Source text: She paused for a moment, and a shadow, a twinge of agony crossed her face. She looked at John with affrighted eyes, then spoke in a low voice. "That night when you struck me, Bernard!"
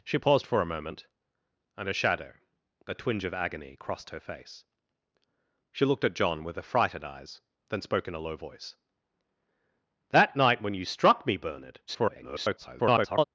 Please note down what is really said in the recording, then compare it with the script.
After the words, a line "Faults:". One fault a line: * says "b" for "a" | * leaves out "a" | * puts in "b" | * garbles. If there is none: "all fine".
She paused for a moment, and a shadow, a twinge of agony crossed her face. She looked at John with affrighted eyes, then spoke in a low voice. "That night when you struck me, Bernard!" [garbled]
Faults:
* garbles